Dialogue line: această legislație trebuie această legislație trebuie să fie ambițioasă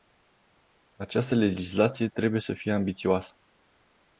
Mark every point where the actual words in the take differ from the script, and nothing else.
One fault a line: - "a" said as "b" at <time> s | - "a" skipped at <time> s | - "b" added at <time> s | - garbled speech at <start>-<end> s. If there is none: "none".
- "această legislație trebuie" skipped at 2.4 s